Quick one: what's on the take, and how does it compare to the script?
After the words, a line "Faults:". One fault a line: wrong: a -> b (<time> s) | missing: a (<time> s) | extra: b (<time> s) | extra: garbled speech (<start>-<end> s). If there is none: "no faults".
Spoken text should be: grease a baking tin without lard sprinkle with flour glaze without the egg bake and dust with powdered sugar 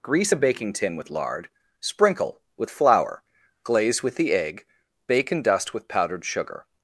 grease a baking tin with lard sprinkle with flour glaze with the egg bake and dust with powdered sugar
Faults:
wrong: without -> with (1.0 s)
wrong: without -> with (4.0 s)